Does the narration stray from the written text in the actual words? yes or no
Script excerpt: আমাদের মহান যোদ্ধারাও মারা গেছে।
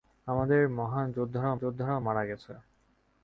yes